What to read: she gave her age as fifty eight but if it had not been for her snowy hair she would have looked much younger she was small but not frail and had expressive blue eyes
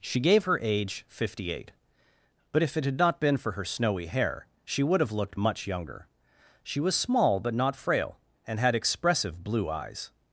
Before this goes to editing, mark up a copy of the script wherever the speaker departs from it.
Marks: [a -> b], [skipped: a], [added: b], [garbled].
she gave her age [skipped: as] fifty eight but if it had not been for her snowy hair she would have looked much younger she was small but not frail and had expressive blue eyes